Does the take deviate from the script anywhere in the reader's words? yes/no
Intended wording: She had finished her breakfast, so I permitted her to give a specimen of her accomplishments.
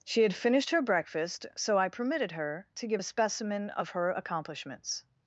no